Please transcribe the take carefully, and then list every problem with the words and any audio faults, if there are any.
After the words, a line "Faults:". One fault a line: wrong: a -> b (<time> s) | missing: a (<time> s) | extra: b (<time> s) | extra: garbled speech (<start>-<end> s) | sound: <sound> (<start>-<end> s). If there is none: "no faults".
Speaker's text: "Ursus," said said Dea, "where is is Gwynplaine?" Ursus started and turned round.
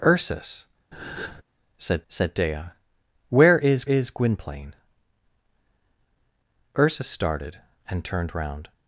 "Ursus," said said Dea, "where is is Gwynplaine?" Ursus started and turned round.
Faults:
sound: breath (0.9-1.4 s)